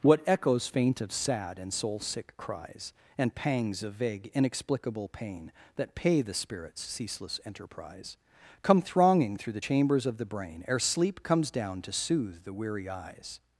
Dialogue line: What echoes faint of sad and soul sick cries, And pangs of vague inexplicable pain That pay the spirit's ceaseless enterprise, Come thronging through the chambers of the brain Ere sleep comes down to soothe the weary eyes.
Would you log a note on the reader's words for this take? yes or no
no